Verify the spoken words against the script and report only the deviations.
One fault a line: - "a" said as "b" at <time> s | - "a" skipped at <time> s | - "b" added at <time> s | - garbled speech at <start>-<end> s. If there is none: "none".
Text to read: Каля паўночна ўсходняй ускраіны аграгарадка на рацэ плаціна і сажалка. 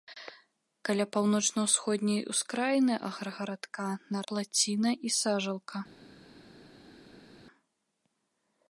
- "рацэ" skipped at 4.3 s